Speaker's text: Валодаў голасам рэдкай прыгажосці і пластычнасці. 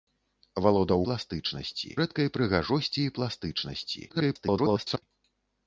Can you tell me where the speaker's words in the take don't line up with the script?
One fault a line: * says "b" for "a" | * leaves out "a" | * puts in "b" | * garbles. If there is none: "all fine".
* says "пластычнасці" for "голасам"
* garbles